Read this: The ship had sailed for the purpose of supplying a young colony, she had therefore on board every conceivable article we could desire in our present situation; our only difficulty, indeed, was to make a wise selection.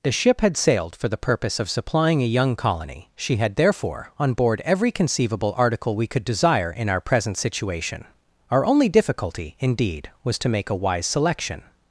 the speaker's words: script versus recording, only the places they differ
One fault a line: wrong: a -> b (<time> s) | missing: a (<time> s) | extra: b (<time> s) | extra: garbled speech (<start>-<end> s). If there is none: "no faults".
no faults